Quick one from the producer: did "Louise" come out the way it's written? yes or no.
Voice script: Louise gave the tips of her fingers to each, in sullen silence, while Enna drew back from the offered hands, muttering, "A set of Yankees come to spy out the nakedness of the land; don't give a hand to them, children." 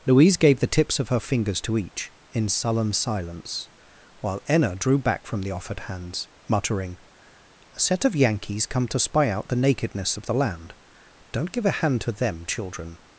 yes